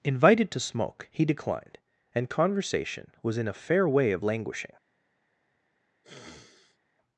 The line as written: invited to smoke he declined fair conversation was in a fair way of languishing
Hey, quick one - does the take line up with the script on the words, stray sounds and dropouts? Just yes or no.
no